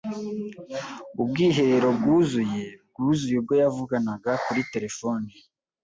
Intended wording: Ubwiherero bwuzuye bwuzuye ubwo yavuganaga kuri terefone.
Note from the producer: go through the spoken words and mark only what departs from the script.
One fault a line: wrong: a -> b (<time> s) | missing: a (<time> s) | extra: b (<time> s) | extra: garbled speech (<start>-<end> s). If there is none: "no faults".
no faults